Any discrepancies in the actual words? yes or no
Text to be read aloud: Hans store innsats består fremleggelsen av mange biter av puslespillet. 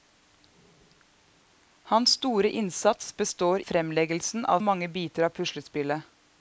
no